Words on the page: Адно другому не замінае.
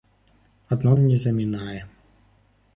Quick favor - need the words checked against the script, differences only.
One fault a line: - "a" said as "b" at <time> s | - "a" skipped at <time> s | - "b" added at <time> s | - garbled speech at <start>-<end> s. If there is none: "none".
- "другому" skipped at 0.9 s